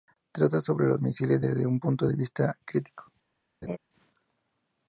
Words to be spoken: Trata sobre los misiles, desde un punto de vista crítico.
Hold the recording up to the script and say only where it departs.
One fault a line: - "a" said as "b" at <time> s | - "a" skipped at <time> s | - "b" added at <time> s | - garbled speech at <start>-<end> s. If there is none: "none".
none